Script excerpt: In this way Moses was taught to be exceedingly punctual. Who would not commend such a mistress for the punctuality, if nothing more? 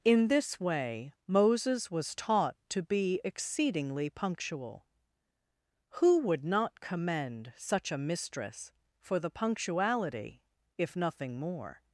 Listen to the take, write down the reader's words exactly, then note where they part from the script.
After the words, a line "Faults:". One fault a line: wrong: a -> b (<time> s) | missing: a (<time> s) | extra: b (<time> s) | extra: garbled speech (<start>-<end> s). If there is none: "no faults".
In this way Moses was taught to be exceedingly punctual. Who would not commend such a mistress for the punctuality, if nothing more?
Faults:
no faults